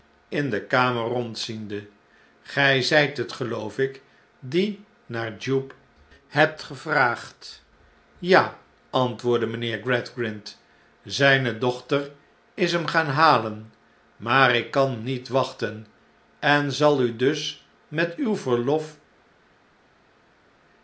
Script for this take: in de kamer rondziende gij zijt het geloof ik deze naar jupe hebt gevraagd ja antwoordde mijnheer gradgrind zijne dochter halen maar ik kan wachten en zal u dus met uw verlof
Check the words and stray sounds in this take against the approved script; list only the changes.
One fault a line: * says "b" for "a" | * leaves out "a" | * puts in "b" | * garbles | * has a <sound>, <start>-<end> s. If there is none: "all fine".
* says "die" for "deze"
* puts in "is hem gaan"
* puts in "niet"